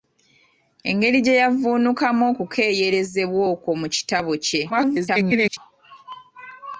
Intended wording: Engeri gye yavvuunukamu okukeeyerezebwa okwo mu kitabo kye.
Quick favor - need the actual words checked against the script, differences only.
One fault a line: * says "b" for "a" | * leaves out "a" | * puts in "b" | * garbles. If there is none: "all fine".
* garbles